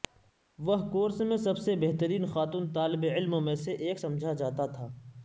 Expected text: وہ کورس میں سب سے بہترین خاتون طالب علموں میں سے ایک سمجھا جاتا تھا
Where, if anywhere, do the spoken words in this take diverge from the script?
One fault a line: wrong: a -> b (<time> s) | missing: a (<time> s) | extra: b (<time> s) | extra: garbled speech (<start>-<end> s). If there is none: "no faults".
no faults